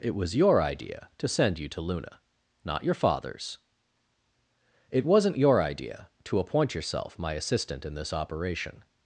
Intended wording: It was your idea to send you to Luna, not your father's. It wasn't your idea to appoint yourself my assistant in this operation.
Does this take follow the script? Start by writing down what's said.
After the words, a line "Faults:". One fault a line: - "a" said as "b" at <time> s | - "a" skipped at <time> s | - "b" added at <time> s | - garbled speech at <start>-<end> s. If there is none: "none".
It was your idea to send you to Luna, not your father's. It wasn't your idea to appoint yourself my assistant in this operation.
Faults:
none